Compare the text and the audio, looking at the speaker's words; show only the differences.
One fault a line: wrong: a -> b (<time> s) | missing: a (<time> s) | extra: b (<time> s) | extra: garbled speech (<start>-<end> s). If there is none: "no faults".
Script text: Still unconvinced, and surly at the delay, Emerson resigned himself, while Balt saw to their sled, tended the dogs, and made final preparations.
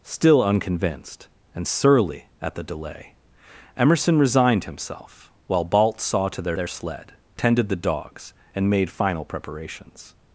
extra: their (6.5 s)